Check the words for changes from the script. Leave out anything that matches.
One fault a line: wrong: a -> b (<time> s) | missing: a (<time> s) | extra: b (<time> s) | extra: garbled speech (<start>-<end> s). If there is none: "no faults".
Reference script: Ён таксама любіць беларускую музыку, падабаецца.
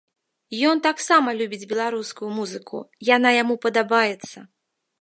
extra: яна яму (3.2 s)